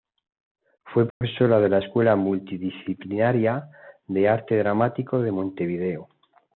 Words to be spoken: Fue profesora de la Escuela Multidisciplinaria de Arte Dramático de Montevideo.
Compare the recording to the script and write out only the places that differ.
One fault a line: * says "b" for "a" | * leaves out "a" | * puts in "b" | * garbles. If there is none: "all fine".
all fine